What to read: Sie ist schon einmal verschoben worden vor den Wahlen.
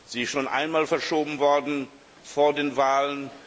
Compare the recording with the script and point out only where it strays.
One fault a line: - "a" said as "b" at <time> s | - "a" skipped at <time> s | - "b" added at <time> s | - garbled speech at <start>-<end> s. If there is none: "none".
none